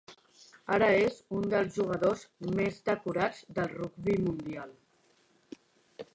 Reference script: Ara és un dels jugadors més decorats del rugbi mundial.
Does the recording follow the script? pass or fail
pass